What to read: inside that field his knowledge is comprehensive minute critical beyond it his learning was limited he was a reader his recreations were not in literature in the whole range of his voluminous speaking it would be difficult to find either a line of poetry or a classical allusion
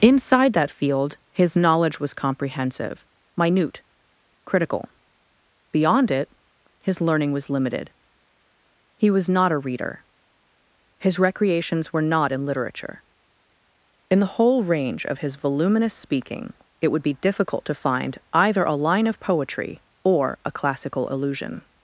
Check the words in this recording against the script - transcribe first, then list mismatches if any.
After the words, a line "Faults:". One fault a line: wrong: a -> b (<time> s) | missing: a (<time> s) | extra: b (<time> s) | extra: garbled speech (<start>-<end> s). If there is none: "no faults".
inside that field his knowledge was comprehensive minute critical beyond it his learning was limited he was not a reader his recreations were not in literature in the whole range of his voluminous speaking it would be difficult to find either a line of poetry or a classical allusion
Faults:
wrong: is -> was (2.0 s)
extra: not (9.3 s)